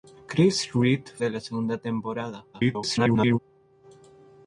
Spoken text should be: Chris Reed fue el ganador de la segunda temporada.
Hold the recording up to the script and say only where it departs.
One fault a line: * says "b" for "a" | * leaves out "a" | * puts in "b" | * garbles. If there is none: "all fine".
* leaves out "fue el ganador"
* garbles